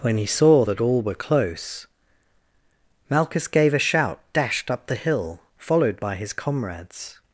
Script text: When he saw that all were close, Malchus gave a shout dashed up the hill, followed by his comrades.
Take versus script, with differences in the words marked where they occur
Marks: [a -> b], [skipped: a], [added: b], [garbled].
When he saw that all were close, Malchus gave a shout dashed up the hill, followed by his comrades.